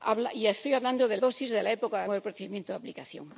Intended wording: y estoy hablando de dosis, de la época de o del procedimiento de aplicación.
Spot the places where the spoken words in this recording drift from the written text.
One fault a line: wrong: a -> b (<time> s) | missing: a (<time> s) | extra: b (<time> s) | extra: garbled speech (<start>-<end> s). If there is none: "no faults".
no faults